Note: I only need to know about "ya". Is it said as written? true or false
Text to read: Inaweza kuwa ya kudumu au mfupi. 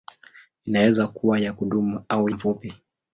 true